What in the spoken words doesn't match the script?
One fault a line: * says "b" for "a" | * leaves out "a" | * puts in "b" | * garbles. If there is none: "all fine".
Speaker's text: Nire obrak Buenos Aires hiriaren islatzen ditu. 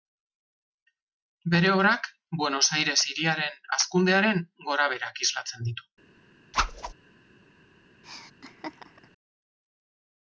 * says "Bere" for "Nire"
* puts in "hazkundearen gorabeherak"